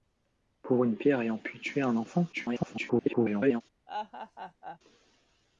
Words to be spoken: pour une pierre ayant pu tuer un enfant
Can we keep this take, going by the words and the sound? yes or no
no